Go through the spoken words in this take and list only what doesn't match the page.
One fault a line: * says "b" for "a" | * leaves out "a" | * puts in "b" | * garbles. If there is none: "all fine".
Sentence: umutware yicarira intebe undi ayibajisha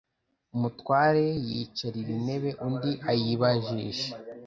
all fine